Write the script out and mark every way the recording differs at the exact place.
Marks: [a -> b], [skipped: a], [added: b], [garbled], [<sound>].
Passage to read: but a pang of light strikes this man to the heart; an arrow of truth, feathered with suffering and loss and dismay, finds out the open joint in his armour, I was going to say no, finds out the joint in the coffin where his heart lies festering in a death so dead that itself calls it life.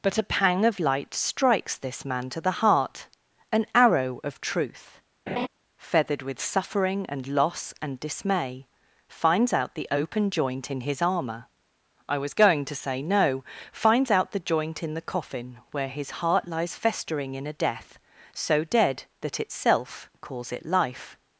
but a pang of light strikes this man to the heart; an arrow of truth, [laugh] feathered with suffering and loss and dismay, finds out the open joint in his armour, I was going to say no, finds out the joint in the coffin where his heart lies festering in a death so dead that itself calls it life.